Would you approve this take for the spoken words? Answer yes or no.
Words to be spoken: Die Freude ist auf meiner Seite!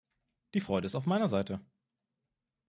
yes